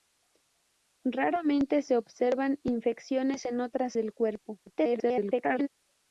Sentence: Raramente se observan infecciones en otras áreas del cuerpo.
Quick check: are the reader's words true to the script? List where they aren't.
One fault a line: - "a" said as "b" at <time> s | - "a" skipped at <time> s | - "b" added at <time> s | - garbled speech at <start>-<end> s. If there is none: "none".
- "áreas" skipped at 4.0 s
- garbled speech at 4.7-5.7 s